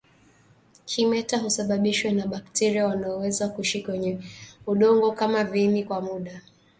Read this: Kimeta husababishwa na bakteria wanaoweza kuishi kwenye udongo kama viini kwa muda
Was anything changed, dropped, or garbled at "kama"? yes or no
no